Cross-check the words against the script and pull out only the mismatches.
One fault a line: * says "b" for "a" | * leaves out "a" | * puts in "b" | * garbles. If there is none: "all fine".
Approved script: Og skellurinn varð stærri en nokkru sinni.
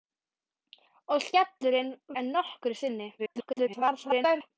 * leaves out "varð stærri"
* garbles